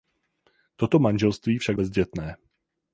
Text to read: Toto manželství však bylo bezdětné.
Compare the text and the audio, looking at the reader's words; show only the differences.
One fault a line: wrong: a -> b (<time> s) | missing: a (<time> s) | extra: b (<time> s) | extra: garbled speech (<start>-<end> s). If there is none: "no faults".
missing: bylo (1.8 s)